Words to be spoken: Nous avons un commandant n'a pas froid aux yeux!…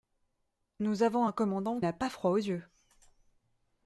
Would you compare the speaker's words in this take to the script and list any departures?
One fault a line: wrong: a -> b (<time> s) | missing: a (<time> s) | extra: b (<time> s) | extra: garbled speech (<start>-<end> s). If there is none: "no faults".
no faults